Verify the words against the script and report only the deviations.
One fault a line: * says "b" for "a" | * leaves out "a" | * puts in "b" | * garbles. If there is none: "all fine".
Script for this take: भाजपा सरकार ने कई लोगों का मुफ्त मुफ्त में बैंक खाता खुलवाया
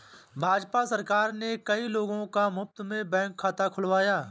* leaves out "मुफ्त"